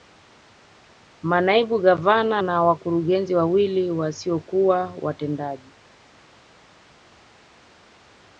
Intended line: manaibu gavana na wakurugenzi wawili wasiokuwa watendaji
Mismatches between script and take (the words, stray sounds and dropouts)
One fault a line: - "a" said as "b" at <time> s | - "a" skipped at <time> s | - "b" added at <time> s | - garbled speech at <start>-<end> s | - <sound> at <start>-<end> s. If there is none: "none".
none